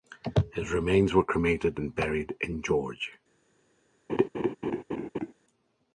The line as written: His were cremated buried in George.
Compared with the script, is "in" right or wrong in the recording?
right